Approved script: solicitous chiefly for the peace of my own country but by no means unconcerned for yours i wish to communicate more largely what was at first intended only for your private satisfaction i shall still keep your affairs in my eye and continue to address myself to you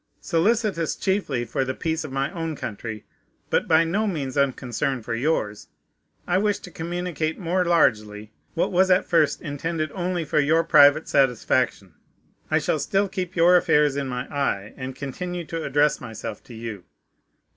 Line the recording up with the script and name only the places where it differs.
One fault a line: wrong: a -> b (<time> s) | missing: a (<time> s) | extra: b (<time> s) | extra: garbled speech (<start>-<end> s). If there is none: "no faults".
no faults